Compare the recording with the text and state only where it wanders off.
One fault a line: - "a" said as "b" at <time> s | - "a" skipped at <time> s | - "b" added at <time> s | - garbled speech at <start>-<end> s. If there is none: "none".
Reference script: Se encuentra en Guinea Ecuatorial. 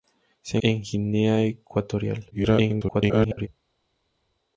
- "encuentra" skipped at 0.6 s
- garbled speech at 2.3-3.5 s